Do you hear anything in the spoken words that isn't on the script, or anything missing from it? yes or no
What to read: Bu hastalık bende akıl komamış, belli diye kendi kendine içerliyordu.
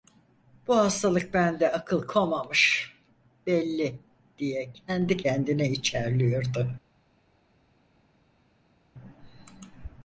no